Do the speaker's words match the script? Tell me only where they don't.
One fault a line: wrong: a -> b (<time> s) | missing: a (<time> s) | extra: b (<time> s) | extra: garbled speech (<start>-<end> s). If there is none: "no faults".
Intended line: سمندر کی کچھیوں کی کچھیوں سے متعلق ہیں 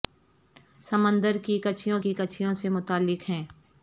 no faults